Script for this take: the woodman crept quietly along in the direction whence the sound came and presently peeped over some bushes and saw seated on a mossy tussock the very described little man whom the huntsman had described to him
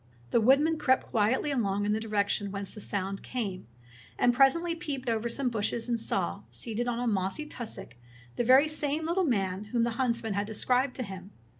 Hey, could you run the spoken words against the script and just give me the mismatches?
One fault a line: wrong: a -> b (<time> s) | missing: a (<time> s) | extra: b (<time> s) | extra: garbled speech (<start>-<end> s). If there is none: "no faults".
wrong: described -> same (8.7 s)